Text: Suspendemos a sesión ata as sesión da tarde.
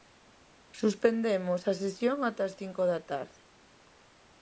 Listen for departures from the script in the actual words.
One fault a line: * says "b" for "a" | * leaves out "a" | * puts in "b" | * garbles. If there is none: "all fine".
* says "cinco" for "sesión"